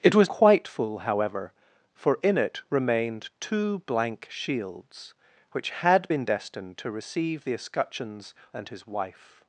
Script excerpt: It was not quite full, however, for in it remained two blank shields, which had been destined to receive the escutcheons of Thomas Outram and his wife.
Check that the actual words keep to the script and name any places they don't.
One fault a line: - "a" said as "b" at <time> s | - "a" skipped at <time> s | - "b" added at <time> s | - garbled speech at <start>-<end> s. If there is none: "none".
- "not" skipped at 0.3 s
- "of Thomas Outram" skipped at 8.3 s